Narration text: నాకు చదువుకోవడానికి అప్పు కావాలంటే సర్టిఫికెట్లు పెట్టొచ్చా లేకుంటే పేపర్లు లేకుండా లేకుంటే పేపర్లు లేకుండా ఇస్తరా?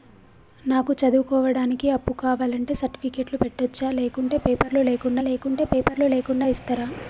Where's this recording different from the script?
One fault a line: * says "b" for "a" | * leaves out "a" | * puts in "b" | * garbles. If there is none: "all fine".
all fine